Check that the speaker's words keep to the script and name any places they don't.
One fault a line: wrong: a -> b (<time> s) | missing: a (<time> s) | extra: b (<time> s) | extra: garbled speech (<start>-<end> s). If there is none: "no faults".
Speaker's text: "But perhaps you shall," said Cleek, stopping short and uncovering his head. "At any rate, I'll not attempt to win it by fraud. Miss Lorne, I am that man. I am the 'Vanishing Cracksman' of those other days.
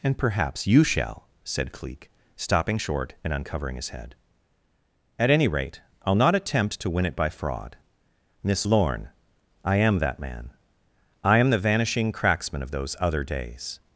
wrong: But -> And (0.0 s)